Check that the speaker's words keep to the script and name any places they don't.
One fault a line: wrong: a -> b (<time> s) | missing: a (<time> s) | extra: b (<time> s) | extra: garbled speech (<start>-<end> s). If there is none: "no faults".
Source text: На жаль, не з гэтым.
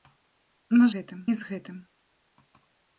wrong: жаль -> гэтым (0.9 s)